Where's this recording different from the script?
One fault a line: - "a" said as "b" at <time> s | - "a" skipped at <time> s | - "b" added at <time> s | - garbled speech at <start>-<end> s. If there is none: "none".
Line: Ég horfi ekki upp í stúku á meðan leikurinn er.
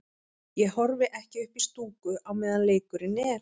none